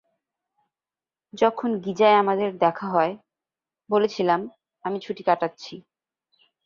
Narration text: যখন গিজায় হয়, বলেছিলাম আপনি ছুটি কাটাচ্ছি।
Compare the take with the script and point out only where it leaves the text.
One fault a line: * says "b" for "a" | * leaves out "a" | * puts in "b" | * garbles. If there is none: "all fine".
* puts in "আমাদের দেখা"
* says "আমি" for "আপনি"